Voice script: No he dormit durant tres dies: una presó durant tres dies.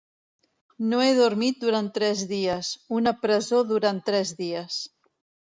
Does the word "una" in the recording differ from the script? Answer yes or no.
no